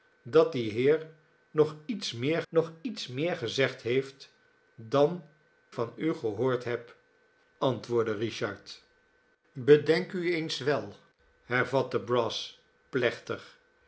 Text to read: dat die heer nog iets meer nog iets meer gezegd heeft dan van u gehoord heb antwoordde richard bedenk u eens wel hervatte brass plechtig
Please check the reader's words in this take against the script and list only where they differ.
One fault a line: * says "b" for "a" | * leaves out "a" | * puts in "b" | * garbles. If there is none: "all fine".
all fine